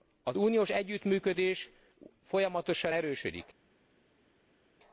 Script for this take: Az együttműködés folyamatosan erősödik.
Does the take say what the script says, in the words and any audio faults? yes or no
no